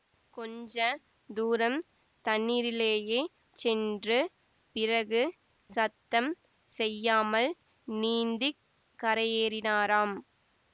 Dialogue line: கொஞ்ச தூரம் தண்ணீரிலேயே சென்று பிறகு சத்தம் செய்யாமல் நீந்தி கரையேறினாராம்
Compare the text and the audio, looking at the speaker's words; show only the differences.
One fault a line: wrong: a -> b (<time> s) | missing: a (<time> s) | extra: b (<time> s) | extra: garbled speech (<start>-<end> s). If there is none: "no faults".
no faults